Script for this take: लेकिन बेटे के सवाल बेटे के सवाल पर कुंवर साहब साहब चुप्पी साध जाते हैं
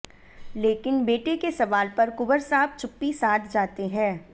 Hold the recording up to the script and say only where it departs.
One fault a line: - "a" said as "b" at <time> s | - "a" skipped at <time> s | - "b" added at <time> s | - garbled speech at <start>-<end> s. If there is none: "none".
- "बेटे के सवाल" skipped at 1.9 s
- "साहब" skipped at 2.8 s